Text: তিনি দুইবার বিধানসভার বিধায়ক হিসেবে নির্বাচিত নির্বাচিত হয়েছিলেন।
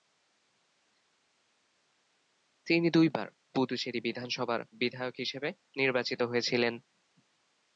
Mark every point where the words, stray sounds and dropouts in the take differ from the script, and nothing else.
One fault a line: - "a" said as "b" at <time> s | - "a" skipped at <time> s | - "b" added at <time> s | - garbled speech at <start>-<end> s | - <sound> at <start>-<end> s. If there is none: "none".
- "পুদুচেরি" added at 3.5 s
- "নির্বাচিত" skipped at 6.2 s